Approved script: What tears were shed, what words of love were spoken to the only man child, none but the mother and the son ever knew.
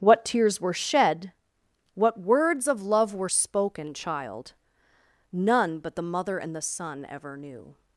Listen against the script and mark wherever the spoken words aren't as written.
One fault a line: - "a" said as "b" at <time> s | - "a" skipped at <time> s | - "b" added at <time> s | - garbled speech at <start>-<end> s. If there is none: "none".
- "to the only man" skipped at 3.9 s